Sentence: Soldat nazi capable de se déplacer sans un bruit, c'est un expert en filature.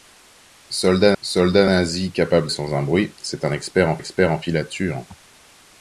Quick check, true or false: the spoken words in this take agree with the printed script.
false